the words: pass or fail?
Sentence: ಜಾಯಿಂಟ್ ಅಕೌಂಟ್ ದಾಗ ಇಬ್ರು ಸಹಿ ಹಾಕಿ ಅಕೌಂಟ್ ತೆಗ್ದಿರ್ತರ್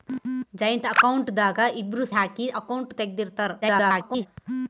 fail